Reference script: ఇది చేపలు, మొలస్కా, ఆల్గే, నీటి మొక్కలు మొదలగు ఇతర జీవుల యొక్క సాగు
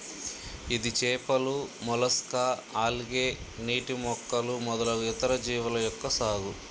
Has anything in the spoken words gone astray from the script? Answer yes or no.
no